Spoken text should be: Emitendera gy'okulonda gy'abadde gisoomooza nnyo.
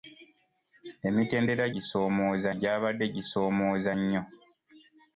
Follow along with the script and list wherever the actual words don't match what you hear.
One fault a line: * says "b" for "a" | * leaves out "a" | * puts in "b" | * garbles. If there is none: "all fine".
* says "gisoomooza" for "gy'okulonda"